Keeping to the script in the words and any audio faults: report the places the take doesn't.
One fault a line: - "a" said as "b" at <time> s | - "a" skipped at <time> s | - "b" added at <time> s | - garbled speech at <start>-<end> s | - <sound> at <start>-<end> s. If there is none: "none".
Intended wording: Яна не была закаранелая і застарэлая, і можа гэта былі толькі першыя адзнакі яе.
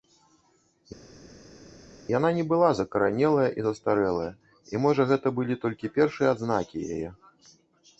none